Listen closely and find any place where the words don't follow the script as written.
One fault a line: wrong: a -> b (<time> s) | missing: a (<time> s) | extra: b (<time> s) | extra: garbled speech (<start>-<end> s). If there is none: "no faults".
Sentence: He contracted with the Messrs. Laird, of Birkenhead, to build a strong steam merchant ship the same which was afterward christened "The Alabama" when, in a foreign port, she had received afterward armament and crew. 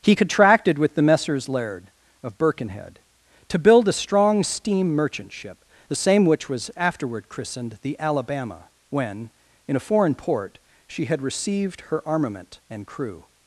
wrong: afterward -> her (11.8 s)